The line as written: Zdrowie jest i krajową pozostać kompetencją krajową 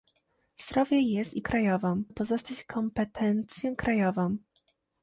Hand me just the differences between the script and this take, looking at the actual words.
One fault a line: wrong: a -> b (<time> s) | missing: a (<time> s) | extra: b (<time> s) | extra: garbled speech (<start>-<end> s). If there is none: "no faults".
no faults